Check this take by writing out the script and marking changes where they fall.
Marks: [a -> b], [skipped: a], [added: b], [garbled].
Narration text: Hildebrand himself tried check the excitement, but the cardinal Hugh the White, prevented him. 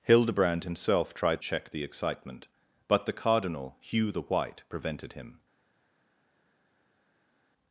Hildebrand himself tried check the excitement, but the cardinal Hugh the White, prevented him.